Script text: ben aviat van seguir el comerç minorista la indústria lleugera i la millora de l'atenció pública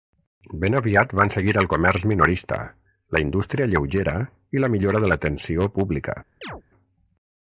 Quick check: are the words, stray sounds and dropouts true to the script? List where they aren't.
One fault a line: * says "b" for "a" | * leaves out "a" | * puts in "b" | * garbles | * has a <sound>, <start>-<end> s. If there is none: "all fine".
* has a chirp, 6.4-6.6 s